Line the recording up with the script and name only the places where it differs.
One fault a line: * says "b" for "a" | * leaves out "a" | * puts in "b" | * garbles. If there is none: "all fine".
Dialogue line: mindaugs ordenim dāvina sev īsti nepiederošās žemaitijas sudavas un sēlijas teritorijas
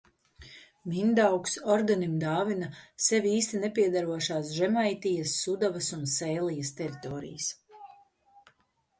all fine